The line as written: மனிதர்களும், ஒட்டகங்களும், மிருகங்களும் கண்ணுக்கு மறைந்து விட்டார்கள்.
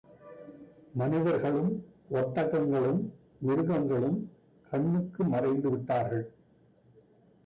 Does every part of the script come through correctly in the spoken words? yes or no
yes